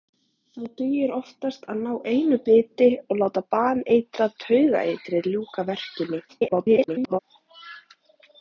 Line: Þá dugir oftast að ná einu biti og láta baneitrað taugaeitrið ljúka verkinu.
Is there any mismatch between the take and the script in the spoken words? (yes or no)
yes